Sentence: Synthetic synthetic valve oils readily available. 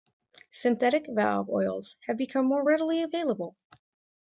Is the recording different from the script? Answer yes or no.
yes